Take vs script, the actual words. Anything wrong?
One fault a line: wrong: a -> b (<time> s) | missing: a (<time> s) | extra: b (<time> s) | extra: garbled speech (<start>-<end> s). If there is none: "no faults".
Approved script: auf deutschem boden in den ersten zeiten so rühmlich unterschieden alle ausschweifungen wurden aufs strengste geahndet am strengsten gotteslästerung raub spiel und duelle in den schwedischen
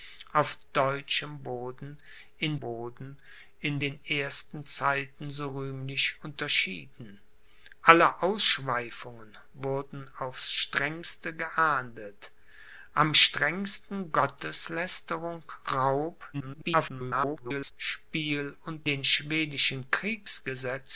extra: boden in (2.6 s)
extra: garbled speech (16.3-17.7 s)
missing: duelle in (18.9 s)